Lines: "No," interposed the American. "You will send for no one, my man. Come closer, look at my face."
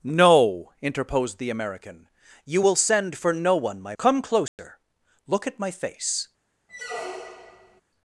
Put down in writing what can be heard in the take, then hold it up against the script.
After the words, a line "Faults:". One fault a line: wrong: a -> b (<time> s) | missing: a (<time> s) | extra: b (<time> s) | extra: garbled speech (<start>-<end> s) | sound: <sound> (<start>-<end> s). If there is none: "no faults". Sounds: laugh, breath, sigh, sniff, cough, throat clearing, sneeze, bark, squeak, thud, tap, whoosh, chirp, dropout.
"No," interposed the American. "You will send for no one, my. Come closer, look at my face."
Faults:
missing: man (4.0 s)
sound: dropout (4.5-4.6 s)
sound: squeak (6.7-7.8 s)